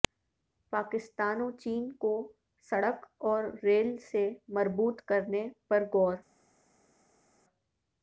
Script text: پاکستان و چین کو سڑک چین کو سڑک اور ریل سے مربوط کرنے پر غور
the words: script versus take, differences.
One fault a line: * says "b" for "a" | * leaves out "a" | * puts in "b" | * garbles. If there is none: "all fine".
* leaves out "چین کو سڑک"